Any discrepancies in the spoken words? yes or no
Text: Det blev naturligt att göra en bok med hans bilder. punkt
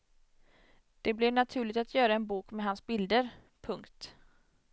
no